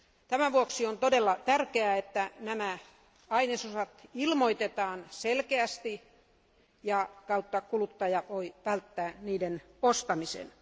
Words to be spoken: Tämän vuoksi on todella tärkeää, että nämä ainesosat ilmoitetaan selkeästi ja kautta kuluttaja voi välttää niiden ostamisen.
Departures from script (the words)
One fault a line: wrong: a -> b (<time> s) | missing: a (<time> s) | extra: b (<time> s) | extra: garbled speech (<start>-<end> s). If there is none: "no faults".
no faults